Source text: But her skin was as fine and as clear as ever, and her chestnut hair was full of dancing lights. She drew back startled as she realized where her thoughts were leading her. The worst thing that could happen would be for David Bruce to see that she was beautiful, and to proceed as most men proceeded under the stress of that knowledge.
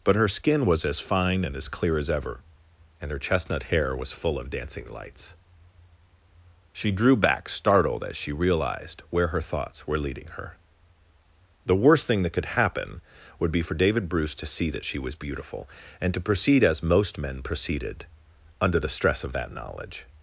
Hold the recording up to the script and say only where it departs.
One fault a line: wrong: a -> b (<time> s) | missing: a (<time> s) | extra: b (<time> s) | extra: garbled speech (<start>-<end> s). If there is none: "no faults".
no faults